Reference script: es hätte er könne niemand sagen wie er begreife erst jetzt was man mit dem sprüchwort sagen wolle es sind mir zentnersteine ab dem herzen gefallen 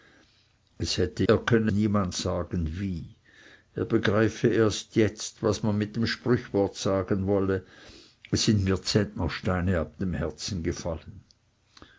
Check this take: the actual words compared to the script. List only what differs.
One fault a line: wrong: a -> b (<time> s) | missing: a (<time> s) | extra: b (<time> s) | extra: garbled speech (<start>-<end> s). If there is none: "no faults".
no faults